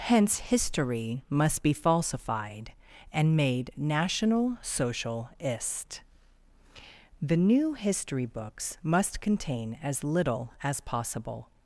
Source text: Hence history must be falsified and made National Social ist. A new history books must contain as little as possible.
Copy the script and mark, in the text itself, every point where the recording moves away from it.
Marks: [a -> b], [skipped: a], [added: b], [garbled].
Hence history must be falsified and made National Social ist. [A -> The] new history books must contain as little as possible.